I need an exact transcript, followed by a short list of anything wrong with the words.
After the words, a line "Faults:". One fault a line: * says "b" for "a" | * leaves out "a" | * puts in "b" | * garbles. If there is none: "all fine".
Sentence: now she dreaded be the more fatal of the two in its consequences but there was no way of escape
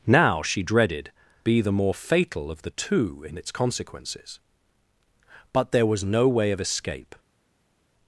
now she dreaded be the more fatal of the two in its consequences but there was no way of escape
Faults:
all fine